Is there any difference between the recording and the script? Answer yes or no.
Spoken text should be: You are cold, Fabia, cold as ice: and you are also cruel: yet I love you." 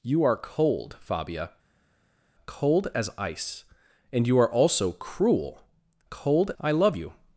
yes